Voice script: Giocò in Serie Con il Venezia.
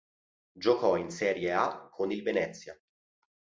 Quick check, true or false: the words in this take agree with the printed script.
false